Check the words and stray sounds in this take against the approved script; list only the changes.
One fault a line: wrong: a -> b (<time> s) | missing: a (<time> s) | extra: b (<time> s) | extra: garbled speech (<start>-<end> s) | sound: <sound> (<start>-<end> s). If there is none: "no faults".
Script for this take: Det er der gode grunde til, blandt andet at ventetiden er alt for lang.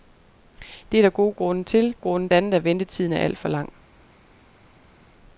wrong: blandt -> grunde (2.0 s)